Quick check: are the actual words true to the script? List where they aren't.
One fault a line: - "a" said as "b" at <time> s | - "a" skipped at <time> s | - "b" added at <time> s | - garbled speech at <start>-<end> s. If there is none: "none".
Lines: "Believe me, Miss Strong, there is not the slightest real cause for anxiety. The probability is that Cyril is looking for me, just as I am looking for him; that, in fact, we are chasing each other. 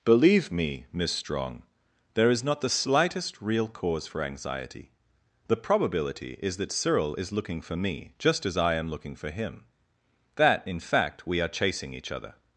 none